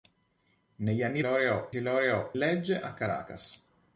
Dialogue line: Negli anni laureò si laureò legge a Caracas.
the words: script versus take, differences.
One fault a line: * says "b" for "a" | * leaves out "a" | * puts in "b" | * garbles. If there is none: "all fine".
all fine